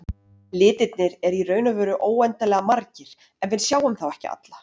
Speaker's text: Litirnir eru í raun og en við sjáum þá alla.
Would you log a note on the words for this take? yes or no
yes